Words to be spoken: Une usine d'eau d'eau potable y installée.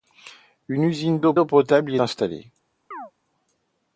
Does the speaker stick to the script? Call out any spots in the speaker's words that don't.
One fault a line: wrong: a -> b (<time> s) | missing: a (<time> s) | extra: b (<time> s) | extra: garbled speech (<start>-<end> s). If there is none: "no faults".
no faults